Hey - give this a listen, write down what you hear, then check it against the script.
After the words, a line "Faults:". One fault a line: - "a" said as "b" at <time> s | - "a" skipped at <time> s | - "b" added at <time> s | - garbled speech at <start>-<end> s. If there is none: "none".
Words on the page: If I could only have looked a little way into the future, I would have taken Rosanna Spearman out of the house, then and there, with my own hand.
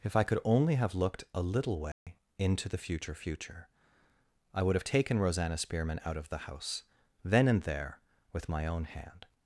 If I could only have looked a little way into the future future, I would have taken Rosanna Spearman out of the house, then and there, with my own hand.
Faults:
- "future" added at 3.1 s